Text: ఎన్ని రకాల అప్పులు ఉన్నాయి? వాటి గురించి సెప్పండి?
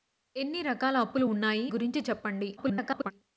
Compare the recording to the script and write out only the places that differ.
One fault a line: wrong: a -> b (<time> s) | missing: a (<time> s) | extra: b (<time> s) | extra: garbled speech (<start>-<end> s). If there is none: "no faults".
missing: వాటి (1.7 s)
extra: garbled speech (2.6-3.1 s)